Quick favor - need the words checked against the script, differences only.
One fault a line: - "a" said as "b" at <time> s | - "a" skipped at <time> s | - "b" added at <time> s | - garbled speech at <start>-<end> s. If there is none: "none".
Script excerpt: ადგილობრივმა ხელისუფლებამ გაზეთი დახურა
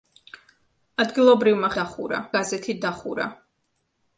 - "ხელისუფლებამ" said as "დახურა" at 1.8 s